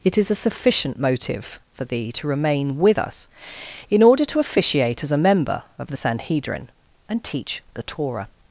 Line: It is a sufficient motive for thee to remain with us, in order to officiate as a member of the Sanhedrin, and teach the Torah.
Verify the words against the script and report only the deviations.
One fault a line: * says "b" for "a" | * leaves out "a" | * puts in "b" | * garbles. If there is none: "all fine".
all fine